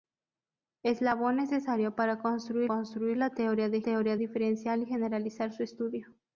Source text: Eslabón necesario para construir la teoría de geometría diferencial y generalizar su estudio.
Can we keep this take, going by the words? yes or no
no